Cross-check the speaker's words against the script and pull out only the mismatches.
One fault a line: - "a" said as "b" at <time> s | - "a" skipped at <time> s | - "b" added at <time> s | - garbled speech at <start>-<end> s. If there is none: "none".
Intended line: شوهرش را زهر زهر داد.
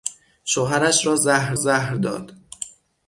none